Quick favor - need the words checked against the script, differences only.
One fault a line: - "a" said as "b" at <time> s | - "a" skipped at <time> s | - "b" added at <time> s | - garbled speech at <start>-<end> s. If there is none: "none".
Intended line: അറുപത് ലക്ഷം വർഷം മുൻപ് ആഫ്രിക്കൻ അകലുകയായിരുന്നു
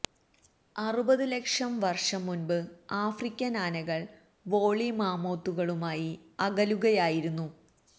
- "ആനകൾ വോള്ളി മാമോത്തുകളുമായി" added at 3.6 s